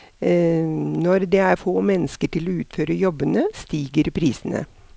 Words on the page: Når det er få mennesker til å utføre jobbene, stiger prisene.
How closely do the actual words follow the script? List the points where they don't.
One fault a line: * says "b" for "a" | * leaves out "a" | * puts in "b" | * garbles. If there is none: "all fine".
all fine